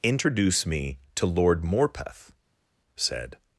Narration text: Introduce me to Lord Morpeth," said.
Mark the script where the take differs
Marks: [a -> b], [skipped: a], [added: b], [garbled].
Introduce me to Lord Morpeth," said.